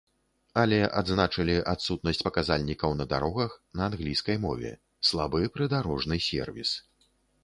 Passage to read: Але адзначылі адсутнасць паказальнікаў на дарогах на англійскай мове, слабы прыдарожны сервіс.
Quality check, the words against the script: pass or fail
pass